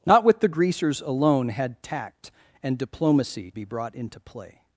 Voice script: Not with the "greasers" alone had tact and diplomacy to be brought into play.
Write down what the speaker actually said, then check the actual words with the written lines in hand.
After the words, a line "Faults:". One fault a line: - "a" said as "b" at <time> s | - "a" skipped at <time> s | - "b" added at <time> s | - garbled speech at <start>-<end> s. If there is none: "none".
Not with the "greasers" alone had tact and diplomacy be brought into play.
Faults:
- "to" skipped at 3.5 s